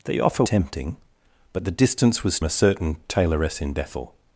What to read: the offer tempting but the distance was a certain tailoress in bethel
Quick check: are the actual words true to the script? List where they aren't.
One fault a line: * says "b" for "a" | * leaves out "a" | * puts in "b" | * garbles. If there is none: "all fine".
all fine